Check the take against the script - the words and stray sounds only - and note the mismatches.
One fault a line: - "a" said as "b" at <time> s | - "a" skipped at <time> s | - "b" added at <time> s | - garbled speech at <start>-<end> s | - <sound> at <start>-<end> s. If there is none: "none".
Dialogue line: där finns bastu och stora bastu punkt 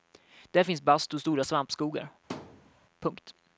- "bastu" said as "svampskogar" at 1.4 s
- thud at 2.3-2.7 s